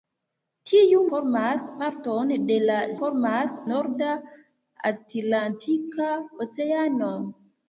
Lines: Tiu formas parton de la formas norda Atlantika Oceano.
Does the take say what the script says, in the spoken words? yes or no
yes